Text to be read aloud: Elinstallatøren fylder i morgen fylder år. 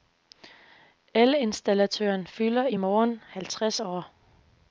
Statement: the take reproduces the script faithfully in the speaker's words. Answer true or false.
false